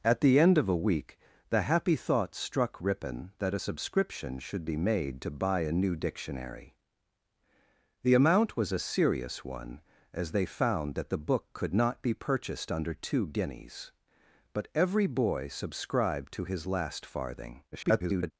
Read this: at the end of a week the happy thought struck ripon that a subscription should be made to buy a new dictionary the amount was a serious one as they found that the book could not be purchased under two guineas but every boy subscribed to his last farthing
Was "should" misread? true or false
false